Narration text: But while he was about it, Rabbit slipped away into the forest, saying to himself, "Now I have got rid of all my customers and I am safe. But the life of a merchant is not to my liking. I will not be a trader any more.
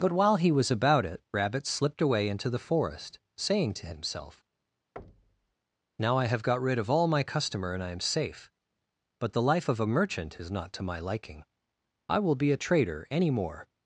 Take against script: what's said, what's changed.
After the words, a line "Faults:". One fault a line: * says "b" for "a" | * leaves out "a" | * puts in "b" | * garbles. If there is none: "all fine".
But while he was about it, Rabbit slipped away into the forest, saying to himself, "Now I have got rid of all my customer and I am safe. But the life of a merchant is not to my liking. I will be a trader any more.
Faults:
* says "customer" for "customers"
* leaves out "not"